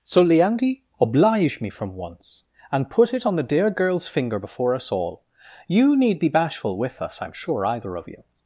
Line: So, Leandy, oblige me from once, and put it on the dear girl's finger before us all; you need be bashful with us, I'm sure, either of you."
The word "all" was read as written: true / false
true